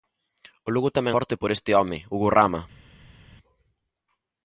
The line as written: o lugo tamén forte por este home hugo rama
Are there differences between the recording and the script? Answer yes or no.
no